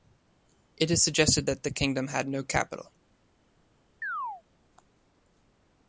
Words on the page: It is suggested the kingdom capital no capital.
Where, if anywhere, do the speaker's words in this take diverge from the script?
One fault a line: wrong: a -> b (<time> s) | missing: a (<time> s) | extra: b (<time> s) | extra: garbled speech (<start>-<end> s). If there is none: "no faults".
extra: that (1.5 s)
wrong: capital -> had (2.1 s)